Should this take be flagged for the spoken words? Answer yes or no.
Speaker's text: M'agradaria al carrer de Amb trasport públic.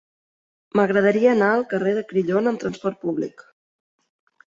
yes